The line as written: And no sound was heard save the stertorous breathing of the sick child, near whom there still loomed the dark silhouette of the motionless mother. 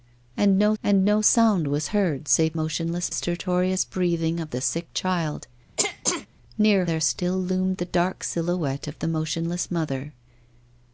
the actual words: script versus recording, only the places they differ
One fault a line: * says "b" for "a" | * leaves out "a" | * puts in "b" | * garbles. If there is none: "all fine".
* puts in "and no"
* says "motionless" for "the"
* leaves out "whom"